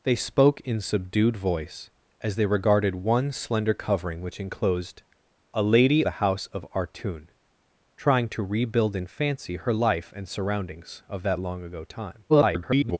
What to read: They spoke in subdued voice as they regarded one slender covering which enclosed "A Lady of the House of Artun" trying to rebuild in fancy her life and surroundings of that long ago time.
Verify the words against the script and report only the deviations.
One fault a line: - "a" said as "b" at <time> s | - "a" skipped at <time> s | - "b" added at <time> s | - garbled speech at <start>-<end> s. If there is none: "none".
- "of" skipped at 6.0 s
- garbled speech at 12.3-13.0 s